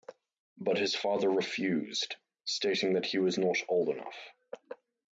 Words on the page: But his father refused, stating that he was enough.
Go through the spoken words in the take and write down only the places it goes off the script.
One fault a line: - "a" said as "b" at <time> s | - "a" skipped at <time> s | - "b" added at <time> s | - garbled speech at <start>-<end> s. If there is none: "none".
- "not old" added at 3.4 s